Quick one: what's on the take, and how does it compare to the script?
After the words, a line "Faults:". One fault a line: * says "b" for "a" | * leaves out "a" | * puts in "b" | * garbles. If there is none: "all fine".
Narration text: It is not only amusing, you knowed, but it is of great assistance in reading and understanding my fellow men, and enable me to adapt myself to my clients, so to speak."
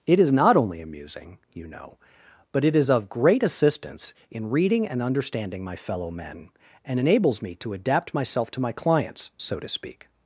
It is not only amusing, you know, but it is of great assistance in reading and understanding my fellow men, and enables me to adapt myself to my clients, so to speak."
Faults:
* says "know" for "knowed"
* says "enables" for "enable"